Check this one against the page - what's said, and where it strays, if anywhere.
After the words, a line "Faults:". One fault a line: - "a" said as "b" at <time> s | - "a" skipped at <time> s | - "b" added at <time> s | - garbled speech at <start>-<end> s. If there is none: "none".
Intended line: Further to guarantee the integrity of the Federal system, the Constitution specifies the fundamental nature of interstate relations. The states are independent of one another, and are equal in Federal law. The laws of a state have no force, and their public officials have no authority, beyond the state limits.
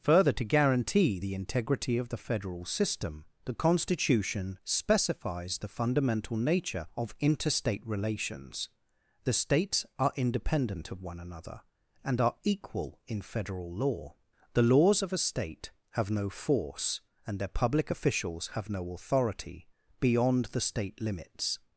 Further to guarantee the integrity of the Federal system, the Constitution specifies the fundamental nature of interstate relations. The states are independent of one another, and are equal in Federal law. The laws of a state have no force, and their public officials have no authority, beyond the state limits.
Faults:
none